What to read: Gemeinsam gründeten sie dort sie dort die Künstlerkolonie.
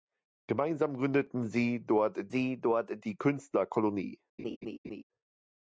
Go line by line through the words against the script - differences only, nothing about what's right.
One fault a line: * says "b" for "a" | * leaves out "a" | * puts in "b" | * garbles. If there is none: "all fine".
all fine